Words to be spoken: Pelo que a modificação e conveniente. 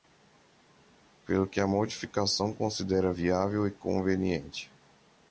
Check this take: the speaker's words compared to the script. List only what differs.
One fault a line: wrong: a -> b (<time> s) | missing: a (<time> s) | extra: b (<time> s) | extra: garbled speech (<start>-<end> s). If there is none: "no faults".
extra: considera viável (2.5 s)